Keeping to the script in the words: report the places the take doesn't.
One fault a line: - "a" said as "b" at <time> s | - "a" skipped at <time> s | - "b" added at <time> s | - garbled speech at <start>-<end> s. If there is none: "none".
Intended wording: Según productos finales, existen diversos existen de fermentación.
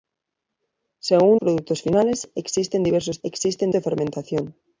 none